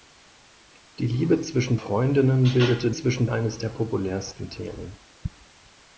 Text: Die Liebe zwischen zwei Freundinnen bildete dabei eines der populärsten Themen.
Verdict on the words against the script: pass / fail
fail